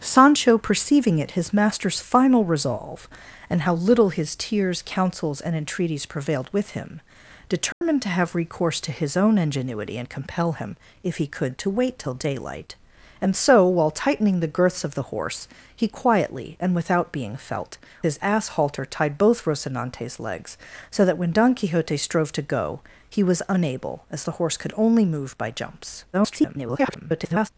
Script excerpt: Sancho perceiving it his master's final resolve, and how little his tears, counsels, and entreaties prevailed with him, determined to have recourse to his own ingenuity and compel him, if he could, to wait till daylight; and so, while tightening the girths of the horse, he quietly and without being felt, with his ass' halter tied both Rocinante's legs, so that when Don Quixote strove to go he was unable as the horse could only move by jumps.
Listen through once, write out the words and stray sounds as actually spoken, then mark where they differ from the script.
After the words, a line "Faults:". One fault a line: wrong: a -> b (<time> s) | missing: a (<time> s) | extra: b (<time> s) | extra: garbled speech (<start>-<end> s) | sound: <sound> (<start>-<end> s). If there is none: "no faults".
Sancho perceiving it his master's final resolve, and how little his tears, counsels, and entreaties prevailed with him, determined to have recourse to his own ingenuity and compel him, if he could, to wait till daylight; and so, while tightening the girths of the horse, he quietly and without being felt, his ass' halter tied both Rocinante's legs, so that when Don Quixote strove to go he was unable as the horse could only move by jumps. [garbled]
Faults:
sound: dropout (7.7-7.8 s)
missing: with (17.8 s)
extra: garbled speech (26.1-27.5 s)